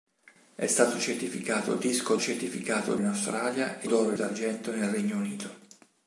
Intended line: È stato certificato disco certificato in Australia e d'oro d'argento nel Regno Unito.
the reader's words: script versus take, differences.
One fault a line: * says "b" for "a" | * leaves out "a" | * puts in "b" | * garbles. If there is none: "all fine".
all fine